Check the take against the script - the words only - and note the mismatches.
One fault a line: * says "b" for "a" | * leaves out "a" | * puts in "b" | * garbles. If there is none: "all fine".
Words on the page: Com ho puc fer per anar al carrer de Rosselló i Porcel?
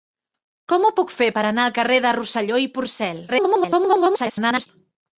* garbles